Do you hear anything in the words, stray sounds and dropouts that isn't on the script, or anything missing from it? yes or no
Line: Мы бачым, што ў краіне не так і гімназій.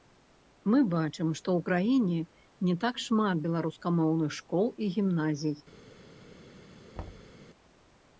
yes